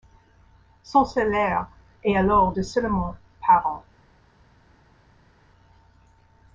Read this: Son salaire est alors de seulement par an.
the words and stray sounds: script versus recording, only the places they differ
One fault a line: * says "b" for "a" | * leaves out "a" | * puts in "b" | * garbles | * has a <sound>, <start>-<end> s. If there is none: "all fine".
all fine